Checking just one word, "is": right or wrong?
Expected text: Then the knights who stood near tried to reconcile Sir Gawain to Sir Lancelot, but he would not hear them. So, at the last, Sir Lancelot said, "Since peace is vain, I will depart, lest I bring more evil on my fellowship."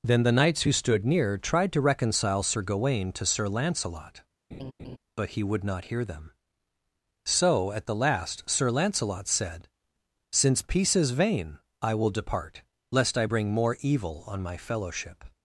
right